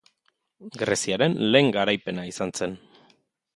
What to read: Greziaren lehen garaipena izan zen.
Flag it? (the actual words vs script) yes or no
no